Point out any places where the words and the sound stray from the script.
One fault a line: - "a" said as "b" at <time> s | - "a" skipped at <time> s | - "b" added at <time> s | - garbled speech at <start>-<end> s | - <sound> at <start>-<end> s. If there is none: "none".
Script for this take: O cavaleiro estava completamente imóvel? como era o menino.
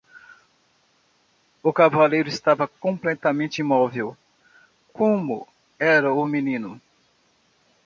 none